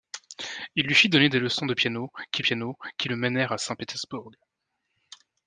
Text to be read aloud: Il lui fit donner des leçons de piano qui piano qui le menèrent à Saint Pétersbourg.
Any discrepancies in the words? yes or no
no